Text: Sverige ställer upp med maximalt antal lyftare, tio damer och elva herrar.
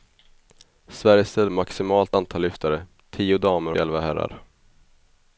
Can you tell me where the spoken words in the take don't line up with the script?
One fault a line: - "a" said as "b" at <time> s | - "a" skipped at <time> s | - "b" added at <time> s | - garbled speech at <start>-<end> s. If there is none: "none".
- "upp" skipped at 1.5 s
- "och" skipped at 3.7 s